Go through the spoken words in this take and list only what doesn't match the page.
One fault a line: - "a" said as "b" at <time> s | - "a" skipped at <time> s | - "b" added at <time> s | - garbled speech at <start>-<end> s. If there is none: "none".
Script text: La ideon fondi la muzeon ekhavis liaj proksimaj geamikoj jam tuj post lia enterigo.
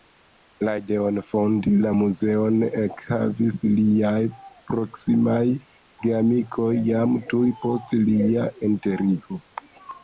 none